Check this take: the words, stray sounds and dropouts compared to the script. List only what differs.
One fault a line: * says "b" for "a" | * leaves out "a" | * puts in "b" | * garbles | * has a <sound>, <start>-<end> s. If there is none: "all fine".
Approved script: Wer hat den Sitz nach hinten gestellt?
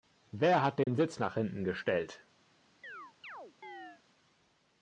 * has a dropout, 0.8-0.9 s
* has a chirp, 2.8-4.0 s